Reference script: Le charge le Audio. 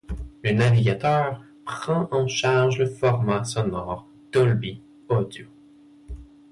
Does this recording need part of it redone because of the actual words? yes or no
yes